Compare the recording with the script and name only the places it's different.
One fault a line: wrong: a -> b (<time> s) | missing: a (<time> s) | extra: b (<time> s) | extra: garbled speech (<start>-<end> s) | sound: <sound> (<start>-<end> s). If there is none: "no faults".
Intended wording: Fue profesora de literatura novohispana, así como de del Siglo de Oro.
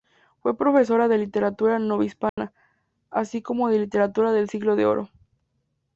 sound: dropout (2.3-2.4 s)
extra: literatura (3.8 s)